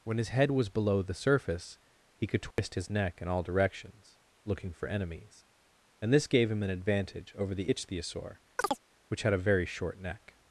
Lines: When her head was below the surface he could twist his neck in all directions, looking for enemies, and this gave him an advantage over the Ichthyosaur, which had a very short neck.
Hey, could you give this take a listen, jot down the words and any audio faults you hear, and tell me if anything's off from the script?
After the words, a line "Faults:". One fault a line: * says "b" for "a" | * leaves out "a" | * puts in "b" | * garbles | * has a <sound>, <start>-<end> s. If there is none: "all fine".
When his head was below the surface he could twist his neck in all directions, looking for enemies, and this gave him an advantage over the Ichthyosaur, which had a very short neck.
Faults:
* says "his" for "her"
* has a dropout, 2.5-2.6 s
* has a chirp, 8.6-8.8 s